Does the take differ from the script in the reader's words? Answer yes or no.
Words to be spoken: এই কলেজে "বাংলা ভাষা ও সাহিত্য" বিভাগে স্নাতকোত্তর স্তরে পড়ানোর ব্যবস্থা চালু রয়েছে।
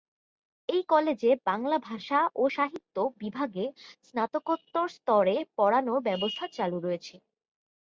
no